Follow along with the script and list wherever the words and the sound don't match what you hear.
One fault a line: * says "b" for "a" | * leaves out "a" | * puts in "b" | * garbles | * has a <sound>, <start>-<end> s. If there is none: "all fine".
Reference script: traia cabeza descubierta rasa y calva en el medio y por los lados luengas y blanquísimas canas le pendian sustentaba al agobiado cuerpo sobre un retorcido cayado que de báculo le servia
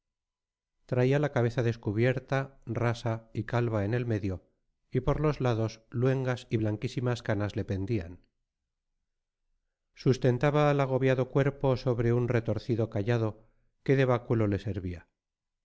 * puts in "la"